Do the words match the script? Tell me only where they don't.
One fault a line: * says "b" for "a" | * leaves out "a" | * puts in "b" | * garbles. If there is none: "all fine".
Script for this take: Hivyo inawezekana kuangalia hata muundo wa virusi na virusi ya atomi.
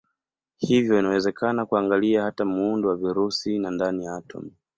* says "ndani" for "virusi"